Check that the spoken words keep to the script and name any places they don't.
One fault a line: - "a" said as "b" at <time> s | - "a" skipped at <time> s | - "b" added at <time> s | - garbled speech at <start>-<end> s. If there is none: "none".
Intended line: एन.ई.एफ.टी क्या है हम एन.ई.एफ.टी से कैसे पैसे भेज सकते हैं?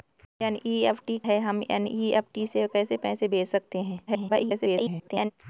- "क्या" skipped at 1.2 s
- garbled speech at 4.1-5.3 s